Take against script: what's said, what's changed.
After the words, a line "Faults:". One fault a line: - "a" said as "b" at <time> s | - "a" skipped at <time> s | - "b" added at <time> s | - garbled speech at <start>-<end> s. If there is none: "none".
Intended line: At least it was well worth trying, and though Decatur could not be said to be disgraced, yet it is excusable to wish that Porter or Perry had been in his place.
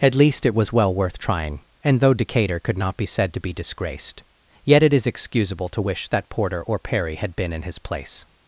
At least it was well worth trying, and though Decatur could not be said to be disgraced, yet it is excusable to wish that Porter or Perry had been in his place.
Faults:
none